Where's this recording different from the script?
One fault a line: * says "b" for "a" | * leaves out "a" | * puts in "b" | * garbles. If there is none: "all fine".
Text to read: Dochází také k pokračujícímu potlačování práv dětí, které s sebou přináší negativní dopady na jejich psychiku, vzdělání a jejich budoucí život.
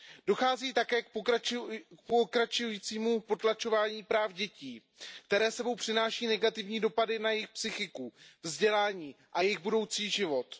all fine